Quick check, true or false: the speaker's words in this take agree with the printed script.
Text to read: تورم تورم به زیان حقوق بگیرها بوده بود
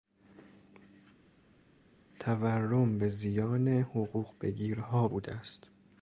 false